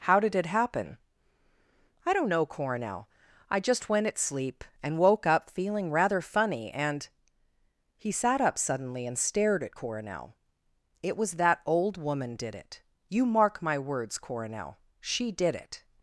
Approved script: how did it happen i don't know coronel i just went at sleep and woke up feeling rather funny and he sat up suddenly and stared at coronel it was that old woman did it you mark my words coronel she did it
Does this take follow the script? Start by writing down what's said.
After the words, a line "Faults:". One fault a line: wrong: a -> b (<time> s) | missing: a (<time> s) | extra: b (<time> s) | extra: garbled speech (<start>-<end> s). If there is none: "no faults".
how did it happen i don't know coronel i just went at sleep and woke up feeling rather funny and he sat up suddenly and stared at coronel it was that old woman did it you mark my words coronel she did it
Faults:
no faults